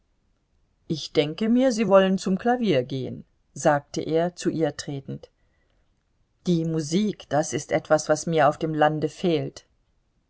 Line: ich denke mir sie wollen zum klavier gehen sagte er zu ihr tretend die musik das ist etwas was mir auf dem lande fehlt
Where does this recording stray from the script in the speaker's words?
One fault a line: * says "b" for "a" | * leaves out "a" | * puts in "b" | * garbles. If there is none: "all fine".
all fine